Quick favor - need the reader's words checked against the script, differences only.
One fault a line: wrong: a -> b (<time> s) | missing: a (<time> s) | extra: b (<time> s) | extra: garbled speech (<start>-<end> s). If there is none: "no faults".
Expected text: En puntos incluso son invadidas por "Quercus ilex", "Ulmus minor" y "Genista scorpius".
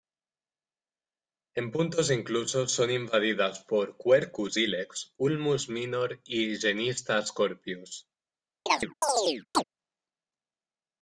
no faults